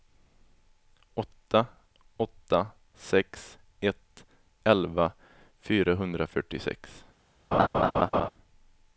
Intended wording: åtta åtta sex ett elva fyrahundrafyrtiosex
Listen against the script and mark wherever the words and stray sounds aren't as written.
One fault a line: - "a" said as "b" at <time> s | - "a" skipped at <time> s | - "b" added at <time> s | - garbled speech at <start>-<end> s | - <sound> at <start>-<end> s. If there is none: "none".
- laugh at 7.5-8.3 s